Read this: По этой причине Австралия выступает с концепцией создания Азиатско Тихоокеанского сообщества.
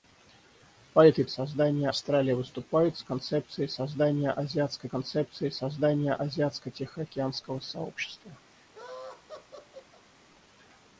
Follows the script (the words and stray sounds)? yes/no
no